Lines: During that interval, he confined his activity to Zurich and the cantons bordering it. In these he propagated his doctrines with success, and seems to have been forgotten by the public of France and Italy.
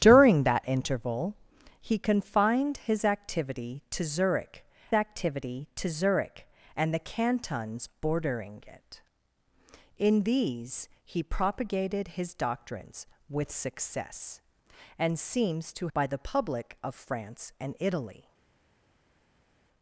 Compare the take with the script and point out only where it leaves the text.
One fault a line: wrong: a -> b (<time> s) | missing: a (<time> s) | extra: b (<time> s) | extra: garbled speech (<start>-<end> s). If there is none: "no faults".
extra: activity to Zurich (4.9 s)
missing: have been forgotten (15.9 s)